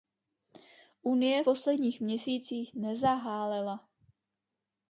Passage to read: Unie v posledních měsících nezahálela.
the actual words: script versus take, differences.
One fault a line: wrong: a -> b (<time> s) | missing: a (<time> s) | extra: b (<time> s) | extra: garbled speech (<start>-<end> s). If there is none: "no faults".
missing: v (1.4 s)